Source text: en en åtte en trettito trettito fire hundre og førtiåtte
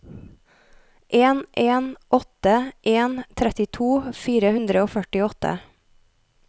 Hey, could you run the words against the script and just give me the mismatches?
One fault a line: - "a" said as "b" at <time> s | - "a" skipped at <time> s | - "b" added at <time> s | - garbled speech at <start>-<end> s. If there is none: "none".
- "trettito" skipped at 3.9 s